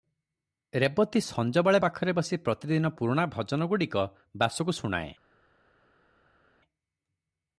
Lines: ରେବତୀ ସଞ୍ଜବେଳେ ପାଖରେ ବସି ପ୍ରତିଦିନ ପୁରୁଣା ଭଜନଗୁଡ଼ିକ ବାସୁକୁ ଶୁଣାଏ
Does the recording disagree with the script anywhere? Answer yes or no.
no